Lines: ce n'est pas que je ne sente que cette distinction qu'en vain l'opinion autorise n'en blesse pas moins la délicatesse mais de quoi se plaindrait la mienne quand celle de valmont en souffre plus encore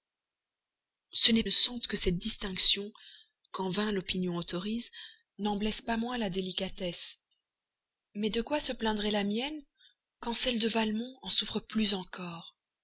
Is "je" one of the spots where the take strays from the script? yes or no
yes